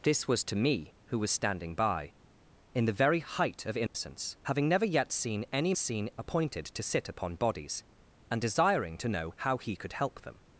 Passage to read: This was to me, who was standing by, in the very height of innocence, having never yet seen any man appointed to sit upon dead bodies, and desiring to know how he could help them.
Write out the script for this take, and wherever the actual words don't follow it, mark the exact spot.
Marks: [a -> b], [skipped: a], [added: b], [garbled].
This was to me, who was standing by, in the very height of innocence, having never yet seen any [man -> seen] appointed to sit upon [skipped: dead] bodies, and desiring to know how he could help them.